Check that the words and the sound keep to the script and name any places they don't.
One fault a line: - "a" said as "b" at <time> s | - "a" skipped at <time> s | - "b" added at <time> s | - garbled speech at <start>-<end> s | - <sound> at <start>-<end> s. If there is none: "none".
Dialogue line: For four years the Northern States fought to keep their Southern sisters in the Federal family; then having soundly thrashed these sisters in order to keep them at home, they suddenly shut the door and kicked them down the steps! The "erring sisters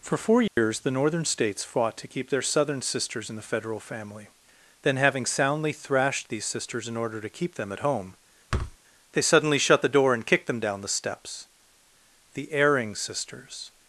- dropout at 0.5-0.6 s
- thud at 8.5-8.8 s